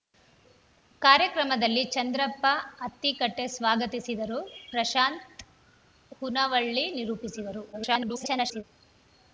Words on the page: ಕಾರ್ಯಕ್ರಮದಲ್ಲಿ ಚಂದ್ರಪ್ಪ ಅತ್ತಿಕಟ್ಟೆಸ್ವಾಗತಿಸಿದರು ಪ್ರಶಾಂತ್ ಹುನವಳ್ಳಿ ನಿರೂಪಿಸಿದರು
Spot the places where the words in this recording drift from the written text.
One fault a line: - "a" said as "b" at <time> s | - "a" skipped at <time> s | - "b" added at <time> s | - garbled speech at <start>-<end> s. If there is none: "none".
- garbled speech at 7.7-8.6 s